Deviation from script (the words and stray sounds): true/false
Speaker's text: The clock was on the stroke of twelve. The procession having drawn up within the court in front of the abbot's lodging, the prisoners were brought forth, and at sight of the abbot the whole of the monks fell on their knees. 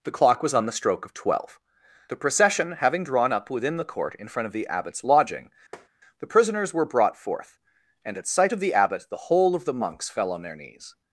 true